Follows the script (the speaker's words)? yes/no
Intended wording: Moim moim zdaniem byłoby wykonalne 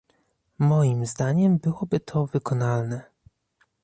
no